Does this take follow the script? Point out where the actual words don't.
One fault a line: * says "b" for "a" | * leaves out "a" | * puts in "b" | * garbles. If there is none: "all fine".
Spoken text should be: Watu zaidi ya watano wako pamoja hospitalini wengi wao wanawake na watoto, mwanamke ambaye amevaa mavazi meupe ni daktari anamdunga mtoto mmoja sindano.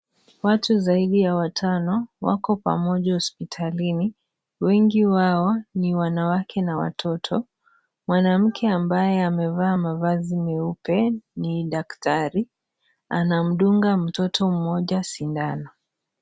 * puts in "ni"